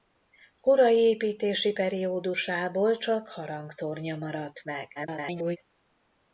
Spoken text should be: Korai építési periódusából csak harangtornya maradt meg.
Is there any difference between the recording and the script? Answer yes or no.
yes